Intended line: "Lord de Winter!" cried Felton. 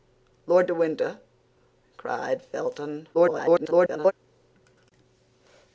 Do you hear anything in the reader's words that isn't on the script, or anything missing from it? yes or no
yes